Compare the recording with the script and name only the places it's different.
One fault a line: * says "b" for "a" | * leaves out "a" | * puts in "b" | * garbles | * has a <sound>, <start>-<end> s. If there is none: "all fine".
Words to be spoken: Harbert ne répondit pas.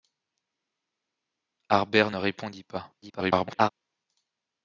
* garbles